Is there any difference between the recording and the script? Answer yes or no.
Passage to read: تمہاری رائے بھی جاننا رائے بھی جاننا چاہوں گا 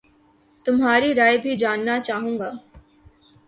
yes